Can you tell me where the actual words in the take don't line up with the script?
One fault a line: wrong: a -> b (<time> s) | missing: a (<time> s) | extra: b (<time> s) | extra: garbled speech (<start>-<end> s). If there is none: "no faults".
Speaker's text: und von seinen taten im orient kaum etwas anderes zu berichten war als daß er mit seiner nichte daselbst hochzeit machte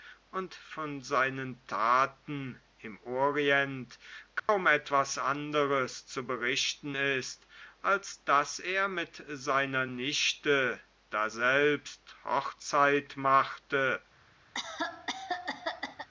wrong: war -> ist (6.9 s)